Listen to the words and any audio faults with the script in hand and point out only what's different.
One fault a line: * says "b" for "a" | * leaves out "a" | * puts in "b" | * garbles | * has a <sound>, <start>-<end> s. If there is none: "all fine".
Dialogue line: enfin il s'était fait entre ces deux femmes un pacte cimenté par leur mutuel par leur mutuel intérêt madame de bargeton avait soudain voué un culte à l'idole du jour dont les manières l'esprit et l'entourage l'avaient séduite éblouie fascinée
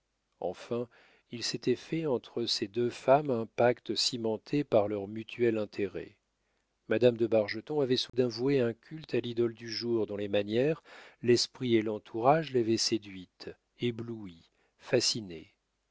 * leaves out "par leur mutuel"
* has a dropout, 8.1-8.1 s